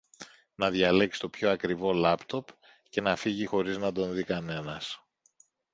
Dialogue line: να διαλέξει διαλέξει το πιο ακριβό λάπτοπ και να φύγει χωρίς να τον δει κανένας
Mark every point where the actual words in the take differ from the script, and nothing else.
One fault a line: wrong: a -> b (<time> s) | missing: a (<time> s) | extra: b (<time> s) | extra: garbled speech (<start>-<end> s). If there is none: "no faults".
missing: διαλέξει (1.2 s)